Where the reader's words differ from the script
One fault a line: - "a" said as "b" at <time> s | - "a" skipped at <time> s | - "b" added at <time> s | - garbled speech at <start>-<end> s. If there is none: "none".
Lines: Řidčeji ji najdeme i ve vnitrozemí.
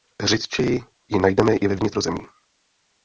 none